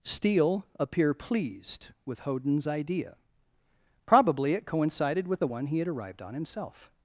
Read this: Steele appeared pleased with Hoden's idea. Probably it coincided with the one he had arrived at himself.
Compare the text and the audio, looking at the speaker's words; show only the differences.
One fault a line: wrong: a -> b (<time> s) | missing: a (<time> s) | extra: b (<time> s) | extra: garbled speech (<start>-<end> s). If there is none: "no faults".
wrong: appeared -> appear (0.8 s)
wrong: at -> on (6.2 s)